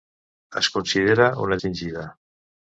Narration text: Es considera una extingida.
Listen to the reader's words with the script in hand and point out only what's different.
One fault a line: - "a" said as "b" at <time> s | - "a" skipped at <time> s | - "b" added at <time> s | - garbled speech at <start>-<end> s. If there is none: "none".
none